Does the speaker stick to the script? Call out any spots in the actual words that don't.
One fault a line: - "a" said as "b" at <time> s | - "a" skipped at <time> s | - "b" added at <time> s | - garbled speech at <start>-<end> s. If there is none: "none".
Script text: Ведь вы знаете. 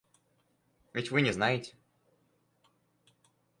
- "не" added at 1.2 s